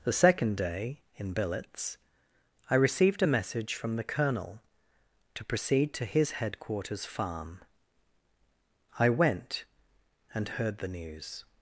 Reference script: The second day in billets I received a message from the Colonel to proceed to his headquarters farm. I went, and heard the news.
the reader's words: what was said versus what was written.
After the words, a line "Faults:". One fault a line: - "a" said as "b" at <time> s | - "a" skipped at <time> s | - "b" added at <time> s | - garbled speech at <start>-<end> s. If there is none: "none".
The second day in billets I received a message from the Colonel to proceed to his headquarters farm. I went, and heard the news.
Faults:
none